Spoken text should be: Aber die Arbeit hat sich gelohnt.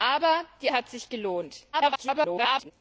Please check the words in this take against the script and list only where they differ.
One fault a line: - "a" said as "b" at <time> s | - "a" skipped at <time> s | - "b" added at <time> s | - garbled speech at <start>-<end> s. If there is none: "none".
- "Arbeit" skipped at 0.7 s
- garbled speech at 1.7-2.7 s